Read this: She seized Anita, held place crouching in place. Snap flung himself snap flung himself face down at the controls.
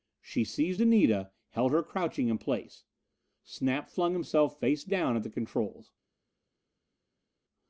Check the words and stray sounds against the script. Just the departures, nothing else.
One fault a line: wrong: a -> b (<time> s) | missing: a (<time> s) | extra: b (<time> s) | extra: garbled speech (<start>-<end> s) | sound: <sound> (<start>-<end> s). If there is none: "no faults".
wrong: place -> her (1.7 s)
missing: snap flung himself (4.6 s)